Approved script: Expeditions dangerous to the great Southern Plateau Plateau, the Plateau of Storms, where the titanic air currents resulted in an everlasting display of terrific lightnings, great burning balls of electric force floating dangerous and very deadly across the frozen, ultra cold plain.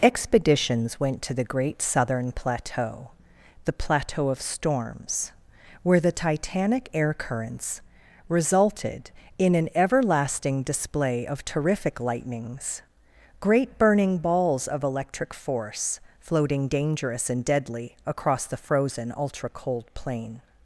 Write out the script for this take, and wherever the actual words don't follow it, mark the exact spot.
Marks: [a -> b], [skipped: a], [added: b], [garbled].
Expeditions [dangerous -> went] to the great Southern Plateau [skipped: Plateau,] the Plateau of Storms, where the titanic air currents resulted in an everlasting display of terrific lightnings, great burning balls of electric force floating dangerous and [skipped: very] deadly across the frozen, ultra cold plain.